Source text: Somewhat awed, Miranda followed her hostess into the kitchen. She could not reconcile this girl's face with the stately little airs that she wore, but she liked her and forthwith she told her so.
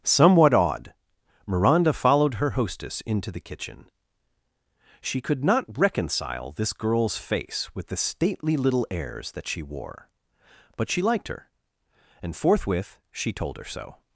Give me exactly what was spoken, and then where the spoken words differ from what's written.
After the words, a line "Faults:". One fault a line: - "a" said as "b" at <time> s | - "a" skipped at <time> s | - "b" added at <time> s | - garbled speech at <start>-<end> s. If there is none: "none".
Somewhat awed, Miranda followed her hostess into the kitchen. She could not reconcile this girl's face with the stately little airs that she wore, but she liked her and forthwith she told her so.
Faults:
none